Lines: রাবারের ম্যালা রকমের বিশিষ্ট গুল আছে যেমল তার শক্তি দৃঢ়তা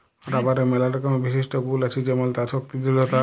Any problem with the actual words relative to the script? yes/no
no